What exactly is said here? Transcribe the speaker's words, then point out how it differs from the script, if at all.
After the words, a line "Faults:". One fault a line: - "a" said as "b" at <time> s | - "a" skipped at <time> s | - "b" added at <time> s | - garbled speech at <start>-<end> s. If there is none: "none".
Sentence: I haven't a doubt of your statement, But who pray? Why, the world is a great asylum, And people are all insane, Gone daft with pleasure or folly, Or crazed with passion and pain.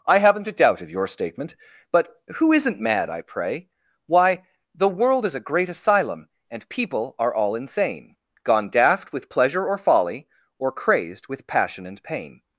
I haven't a doubt of your statement, But who isn't mad, I pray? Why, the world is a great asylum, And people are all insane, Gone daft with pleasure or folly, Or crazed with passion and pain.
Faults:
- "isn't mad I" added at 2.5 s